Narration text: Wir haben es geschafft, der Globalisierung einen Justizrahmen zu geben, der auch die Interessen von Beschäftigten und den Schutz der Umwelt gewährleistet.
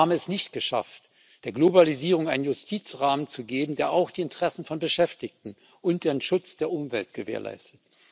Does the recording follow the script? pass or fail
fail